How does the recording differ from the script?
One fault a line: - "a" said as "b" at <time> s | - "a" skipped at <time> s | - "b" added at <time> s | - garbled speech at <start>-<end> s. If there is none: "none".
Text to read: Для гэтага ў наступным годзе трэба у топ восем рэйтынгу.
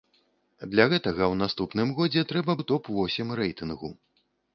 none